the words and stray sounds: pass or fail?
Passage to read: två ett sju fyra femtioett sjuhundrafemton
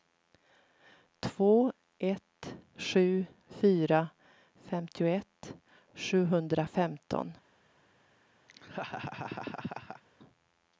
fail